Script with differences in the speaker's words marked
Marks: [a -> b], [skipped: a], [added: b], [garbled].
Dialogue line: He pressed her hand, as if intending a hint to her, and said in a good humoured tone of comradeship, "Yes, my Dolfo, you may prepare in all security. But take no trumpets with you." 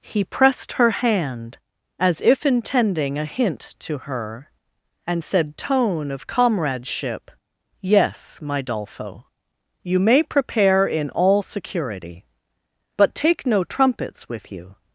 He pressed her hand, as if intending a hint to her, and said [skipped: in a good humoured] tone of comradeship, "Yes, my Dolfo, you may prepare in all security. But take no trumpets with you."